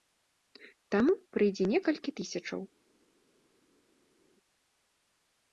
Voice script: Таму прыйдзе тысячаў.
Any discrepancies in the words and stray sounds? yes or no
yes